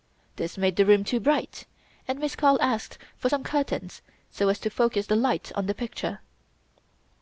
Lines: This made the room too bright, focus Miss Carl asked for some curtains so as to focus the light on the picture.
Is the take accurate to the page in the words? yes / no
no